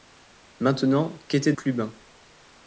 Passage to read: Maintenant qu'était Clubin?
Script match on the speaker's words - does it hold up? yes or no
yes